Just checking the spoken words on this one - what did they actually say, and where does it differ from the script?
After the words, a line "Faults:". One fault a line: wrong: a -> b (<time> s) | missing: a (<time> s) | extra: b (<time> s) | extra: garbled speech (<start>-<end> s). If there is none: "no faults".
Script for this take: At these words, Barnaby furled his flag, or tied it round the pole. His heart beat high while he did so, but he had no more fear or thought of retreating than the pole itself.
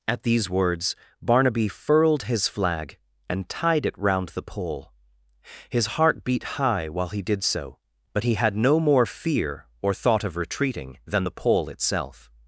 At these words, Barnaby furled his flag, and tied it round the pole. His heart beat high while he did so, but he had no more fear or thought of retreating than the pole itself.
Faults:
wrong: or -> and (3.3 s)